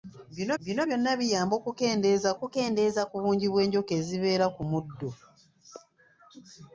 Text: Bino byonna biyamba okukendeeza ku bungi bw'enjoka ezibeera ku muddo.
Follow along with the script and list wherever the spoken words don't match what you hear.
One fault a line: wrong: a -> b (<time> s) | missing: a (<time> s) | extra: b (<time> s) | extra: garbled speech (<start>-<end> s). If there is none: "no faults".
extra: bino (0.6 s)
extra: okukendeeza (2.4 s)